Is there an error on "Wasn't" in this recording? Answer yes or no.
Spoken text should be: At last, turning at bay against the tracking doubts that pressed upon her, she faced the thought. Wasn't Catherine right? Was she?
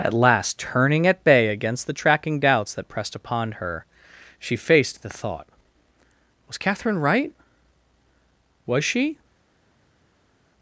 yes